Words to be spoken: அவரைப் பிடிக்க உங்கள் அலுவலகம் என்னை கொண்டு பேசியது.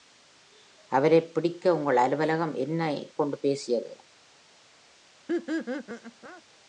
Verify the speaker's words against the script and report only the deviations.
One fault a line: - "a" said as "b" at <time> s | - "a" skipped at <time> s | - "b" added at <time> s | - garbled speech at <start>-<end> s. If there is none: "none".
none